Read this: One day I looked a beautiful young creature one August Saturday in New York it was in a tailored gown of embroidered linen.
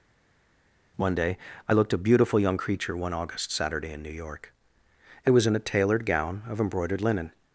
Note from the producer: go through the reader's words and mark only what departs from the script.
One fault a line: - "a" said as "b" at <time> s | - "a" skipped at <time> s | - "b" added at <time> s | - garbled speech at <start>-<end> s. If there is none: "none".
none